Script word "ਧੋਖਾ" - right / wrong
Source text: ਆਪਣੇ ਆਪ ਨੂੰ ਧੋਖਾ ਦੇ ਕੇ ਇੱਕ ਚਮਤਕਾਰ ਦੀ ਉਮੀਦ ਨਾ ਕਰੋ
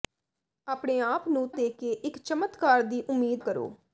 wrong